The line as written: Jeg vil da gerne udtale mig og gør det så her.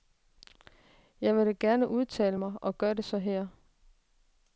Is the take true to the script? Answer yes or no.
yes